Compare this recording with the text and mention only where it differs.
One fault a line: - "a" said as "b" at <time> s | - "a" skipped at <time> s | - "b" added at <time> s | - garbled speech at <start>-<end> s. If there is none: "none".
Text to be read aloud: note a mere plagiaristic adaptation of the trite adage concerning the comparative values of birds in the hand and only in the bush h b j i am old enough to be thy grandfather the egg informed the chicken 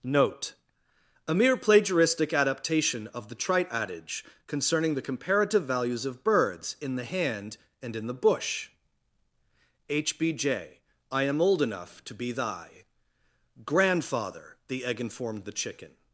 - "only" skipped at 8.0 s